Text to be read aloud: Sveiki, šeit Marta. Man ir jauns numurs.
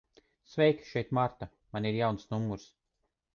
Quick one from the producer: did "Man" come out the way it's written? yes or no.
yes